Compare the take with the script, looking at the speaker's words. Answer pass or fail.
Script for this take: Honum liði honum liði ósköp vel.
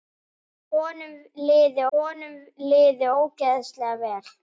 pass